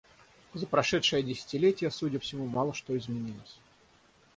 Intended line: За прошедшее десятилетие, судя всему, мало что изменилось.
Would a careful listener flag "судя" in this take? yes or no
no